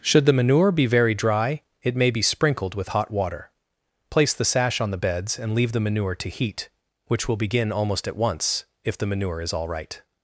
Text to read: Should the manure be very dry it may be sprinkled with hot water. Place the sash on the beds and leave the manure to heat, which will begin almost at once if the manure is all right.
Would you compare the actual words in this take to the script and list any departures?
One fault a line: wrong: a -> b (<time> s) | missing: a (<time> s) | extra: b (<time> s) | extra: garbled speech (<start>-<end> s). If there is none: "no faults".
no faults